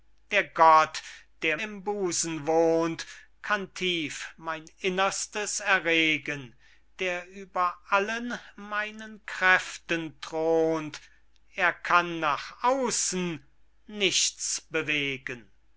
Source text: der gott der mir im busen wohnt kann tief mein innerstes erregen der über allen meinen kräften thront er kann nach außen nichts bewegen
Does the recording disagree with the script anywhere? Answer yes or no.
yes